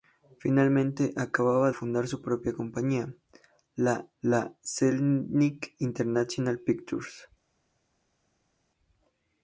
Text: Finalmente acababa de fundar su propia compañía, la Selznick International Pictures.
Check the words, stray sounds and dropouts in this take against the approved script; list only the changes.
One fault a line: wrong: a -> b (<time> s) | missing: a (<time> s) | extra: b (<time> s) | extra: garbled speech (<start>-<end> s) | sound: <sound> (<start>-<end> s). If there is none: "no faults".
missing: de (1.7 s)
extra: la (4.2 s)